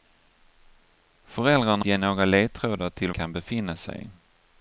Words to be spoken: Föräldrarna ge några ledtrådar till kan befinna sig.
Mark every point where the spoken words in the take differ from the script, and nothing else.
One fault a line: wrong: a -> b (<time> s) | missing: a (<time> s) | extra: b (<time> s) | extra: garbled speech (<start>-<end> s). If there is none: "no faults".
no faults